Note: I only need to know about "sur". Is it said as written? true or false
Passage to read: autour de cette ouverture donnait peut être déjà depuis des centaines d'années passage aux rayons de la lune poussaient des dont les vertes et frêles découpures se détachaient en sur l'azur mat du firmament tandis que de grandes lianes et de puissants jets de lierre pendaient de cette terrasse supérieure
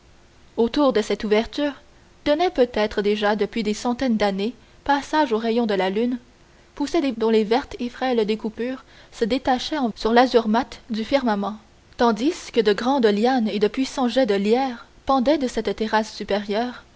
true